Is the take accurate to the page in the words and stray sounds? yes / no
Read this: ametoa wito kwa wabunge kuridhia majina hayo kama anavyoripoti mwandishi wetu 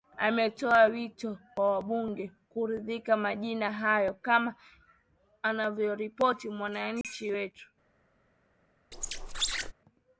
no